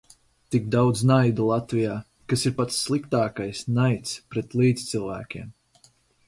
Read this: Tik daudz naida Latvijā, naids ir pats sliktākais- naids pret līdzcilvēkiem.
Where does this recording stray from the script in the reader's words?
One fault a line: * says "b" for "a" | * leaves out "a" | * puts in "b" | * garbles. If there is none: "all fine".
* says "kas" for "naids"